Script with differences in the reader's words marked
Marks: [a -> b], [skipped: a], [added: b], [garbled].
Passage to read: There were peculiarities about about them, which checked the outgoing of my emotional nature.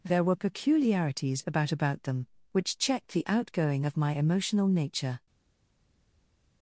There were peculiarities about about them, which checked the outgoing of my emotional nature.